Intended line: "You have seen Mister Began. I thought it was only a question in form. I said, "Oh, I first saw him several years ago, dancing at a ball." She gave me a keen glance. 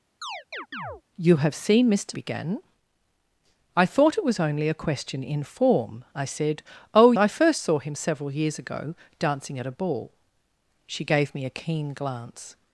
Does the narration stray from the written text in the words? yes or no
no